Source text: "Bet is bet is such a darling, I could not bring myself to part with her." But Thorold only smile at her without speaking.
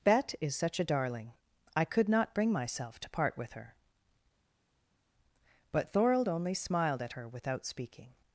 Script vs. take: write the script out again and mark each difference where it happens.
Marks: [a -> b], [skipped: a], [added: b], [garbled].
"Bet is [skipped: bet is] such a darling, I could not bring myself to part with her." But Thorold only [smile -> smiled] at her without speaking.